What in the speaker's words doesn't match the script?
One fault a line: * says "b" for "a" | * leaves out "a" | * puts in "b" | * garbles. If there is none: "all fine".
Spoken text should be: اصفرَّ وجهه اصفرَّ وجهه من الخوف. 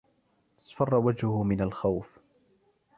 * leaves out "اصفرَّ وجهه"